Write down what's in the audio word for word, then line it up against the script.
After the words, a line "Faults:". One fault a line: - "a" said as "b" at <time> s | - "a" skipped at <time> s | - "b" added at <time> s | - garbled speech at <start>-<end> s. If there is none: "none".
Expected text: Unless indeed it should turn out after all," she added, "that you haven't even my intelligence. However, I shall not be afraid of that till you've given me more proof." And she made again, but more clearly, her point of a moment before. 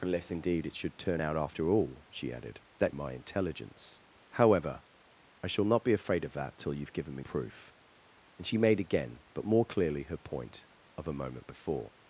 Unless indeed it should turn out after all," she added, "that my intelligence. However, I shall not be afraid of that till you've given me proof." And she made again, but more clearly, her point of a moment before.
Faults:
- "you haven't even" skipped at 3.0 s
- "more" skipped at 7.2 s